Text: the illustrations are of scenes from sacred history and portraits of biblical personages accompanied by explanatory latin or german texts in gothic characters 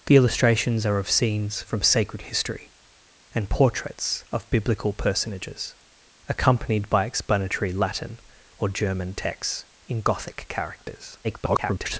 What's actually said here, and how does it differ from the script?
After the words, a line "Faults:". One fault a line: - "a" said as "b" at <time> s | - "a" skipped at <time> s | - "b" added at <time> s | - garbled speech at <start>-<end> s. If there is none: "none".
the illustrations are of scenes from sacred history and portraits of biblical personages accompanied by explanatory latin or german texts in gothic characters [garbled]
Faults:
- garbled speech at 11.2-12.0 s